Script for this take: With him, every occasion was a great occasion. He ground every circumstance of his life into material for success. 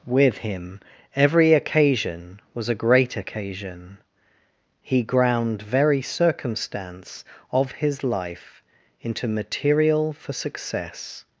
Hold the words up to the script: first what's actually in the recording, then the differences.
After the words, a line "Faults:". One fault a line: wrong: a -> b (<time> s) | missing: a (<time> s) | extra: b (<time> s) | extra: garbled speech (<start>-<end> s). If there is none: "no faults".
With him, every occasion was a great occasion. He ground very circumstance of his life into material for success.
Faults:
wrong: every -> very (5.6 s)